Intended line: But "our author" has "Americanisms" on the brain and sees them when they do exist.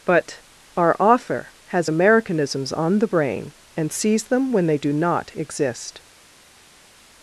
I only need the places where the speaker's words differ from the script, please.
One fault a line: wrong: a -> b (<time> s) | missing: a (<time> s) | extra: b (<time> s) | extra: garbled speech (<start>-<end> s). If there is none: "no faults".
extra: not (4.9 s)